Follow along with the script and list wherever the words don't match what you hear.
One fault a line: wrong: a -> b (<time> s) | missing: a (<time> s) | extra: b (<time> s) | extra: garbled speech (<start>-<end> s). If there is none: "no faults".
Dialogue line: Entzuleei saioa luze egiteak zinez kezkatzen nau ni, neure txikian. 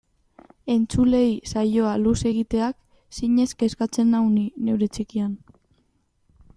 no faults